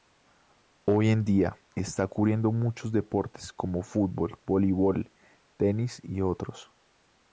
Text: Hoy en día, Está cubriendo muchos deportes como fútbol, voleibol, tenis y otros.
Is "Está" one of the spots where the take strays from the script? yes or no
no